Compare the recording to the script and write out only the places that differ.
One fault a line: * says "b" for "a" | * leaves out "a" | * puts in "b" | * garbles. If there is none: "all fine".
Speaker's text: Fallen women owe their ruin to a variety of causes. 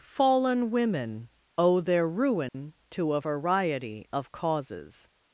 all fine